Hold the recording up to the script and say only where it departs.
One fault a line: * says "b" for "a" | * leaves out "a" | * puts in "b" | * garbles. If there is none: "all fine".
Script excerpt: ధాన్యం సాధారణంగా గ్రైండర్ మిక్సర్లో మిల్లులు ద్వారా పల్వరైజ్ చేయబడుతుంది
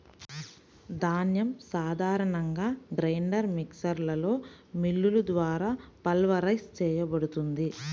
all fine